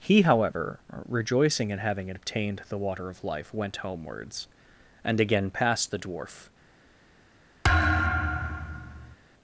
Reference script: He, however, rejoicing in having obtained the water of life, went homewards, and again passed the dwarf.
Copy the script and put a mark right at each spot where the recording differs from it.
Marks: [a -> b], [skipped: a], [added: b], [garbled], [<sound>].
He, however, rejoicing in having obtained the water of life, went homewards, and again passed the dwarf. [thud]